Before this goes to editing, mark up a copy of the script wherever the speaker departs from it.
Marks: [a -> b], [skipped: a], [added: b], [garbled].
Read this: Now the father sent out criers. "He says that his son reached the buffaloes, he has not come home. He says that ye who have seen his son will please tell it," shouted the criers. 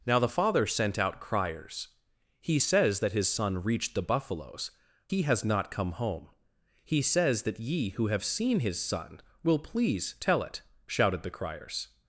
Now the father sent out criers. "He says that his son reached the buffaloes, he has not come home. He says that ye who have seen his son will please tell it," shouted the criers.